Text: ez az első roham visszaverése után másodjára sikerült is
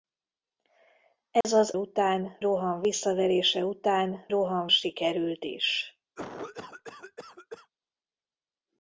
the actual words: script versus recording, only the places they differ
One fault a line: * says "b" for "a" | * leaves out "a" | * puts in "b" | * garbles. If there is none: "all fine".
* says "után" for "első"
* says "roham" for "másodjára"